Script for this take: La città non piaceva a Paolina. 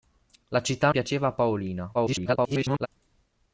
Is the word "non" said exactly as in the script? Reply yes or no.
no